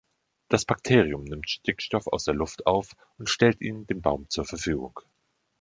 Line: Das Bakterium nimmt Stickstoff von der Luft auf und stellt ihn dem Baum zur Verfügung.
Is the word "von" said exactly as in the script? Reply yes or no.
no